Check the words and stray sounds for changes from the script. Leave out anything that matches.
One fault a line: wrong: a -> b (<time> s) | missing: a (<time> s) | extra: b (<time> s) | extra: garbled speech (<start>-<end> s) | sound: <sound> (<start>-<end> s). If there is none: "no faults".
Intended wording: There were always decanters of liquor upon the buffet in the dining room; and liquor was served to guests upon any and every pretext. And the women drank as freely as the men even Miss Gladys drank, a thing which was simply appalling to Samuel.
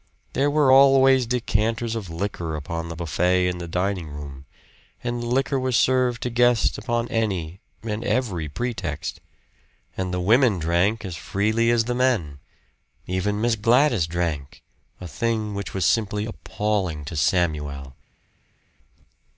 no faults